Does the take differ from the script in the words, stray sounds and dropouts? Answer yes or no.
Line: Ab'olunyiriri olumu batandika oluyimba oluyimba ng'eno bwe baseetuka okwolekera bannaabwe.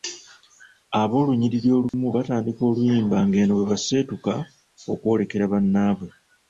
yes